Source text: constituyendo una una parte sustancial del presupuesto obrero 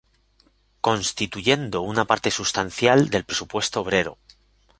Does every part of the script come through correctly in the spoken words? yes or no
no